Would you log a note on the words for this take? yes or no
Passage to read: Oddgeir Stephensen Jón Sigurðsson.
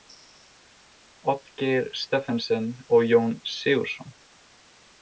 yes